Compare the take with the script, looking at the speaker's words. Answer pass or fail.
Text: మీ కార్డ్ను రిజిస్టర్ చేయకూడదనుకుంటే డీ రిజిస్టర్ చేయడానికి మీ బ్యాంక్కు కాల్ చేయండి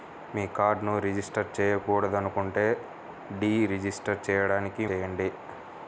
fail